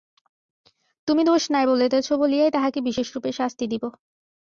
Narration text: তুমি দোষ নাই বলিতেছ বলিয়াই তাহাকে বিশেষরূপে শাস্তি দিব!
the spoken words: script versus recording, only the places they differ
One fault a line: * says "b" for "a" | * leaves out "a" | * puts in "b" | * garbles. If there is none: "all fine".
all fine